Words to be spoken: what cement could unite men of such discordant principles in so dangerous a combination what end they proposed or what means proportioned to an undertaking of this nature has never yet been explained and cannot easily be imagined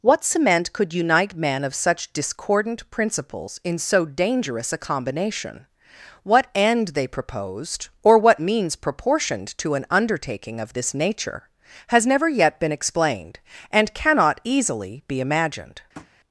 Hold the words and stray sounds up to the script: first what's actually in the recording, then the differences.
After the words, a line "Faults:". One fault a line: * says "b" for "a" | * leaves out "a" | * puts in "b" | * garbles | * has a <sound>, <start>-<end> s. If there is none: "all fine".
what cement could unite men of such discordant principles in so dangerous a combination what end they proposed or what means proportioned to an undertaking of this nature has never yet been explained and cannot easily be imagined
Faults:
* has a tap, 15.9-16.1 s